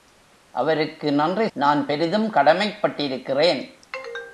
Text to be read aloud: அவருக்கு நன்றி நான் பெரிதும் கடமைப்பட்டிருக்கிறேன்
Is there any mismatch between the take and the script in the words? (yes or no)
no